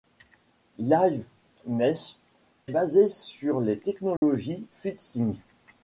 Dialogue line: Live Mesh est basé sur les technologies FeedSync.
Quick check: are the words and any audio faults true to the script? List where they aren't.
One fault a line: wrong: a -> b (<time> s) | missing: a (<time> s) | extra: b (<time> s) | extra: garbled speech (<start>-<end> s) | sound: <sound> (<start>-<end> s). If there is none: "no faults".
missing: est (2.1 s)
sound: dropout (4.2-4.2 s)